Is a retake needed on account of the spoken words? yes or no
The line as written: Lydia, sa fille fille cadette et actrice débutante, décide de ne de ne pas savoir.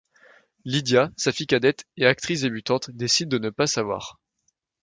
yes